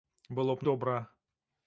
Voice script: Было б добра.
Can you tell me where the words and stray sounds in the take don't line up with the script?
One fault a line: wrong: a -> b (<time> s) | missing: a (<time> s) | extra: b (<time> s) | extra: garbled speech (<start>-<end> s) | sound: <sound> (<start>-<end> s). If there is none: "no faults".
no faults